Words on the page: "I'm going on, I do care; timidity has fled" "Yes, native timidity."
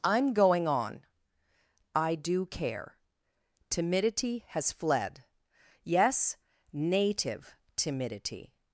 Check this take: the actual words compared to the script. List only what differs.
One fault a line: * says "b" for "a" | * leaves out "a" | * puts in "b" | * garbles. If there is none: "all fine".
all fine